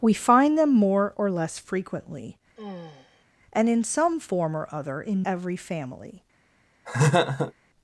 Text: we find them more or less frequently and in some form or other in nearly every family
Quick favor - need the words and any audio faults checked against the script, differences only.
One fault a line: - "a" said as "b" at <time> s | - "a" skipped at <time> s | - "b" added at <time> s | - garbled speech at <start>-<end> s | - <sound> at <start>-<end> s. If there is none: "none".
- sigh at 2.6-3.2 s
- "nearly" skipped at 5.2 s
- laugh at 6.8-7.5 s